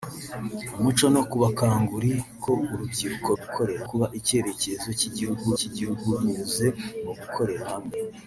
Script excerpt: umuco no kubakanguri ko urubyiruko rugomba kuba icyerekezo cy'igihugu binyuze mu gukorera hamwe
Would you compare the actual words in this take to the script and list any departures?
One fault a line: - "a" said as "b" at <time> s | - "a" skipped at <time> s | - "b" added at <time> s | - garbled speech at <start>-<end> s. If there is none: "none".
- "rugomba" said as "gukorera" at 3.4 s
- "cy'igihugu" added at 5.6 s